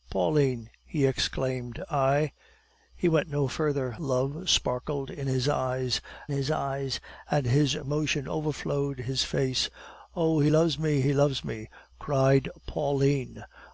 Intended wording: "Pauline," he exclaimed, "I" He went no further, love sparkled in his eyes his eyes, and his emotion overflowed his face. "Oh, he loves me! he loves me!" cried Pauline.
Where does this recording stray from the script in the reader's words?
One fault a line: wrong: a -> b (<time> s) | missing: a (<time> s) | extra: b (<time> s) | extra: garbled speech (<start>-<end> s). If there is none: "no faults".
no faults